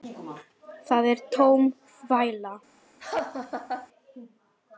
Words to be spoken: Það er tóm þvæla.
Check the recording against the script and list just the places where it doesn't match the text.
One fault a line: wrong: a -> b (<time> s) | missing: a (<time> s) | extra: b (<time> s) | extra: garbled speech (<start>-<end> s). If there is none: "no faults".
no faults